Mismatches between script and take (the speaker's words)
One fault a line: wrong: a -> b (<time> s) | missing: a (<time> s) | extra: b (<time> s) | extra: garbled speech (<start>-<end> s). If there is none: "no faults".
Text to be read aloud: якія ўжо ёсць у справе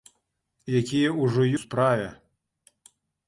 missing: ёсць (1.4 s)